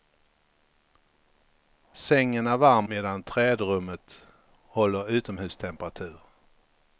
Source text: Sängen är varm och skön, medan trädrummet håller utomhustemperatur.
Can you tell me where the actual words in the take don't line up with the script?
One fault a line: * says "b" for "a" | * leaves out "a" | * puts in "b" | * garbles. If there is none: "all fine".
* leaves out "och skön"